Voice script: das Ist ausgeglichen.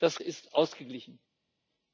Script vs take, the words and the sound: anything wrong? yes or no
no